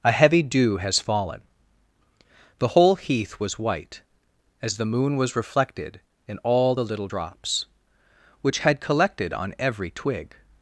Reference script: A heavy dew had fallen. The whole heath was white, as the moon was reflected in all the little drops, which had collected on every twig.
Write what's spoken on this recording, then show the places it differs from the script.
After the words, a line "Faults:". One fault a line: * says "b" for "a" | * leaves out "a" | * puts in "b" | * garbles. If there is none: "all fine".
A heavy dew has fallen. The whole heath was white, as the moon was reflected in all the little drops, which had collected on every twig.
Faults:
* says "has" for "had"